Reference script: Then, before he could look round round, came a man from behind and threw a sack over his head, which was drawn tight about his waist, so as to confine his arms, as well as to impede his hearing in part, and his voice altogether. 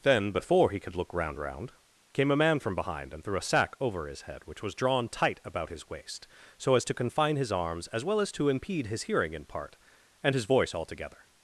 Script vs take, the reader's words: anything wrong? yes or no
no